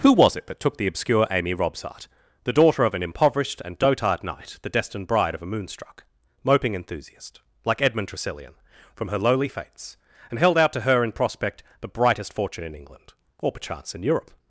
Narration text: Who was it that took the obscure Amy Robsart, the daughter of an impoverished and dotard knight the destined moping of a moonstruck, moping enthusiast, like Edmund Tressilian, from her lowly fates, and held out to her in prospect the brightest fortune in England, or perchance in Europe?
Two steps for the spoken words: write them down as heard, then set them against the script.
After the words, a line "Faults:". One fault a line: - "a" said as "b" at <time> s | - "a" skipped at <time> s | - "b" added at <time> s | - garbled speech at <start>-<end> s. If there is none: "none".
Who was it that took the obscure Amy Robsart, the daughter of an impoverished and dotard knight the destined bride of a moonstruck, moping enthusiast, like Edmund Tressilian, from her lowly fates, and held out to her in prospect the brightest fortune in England, or perchance in Europe?
Faults:
- "moping" said as "bride" at 5.0 s